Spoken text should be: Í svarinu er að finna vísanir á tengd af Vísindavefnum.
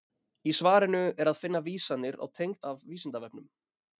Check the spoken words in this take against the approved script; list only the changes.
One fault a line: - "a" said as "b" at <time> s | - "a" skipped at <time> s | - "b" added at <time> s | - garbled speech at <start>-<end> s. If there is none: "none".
none